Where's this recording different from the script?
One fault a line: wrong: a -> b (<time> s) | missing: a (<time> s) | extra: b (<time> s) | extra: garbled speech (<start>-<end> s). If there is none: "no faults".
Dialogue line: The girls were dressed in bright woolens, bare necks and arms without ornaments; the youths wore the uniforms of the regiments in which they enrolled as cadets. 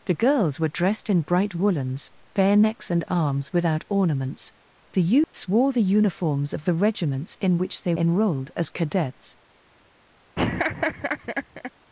no faults